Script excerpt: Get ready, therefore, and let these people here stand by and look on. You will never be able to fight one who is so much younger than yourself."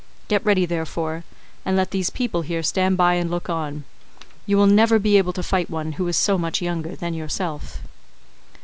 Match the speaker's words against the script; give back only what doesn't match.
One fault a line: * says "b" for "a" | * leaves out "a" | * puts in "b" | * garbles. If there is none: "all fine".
all fine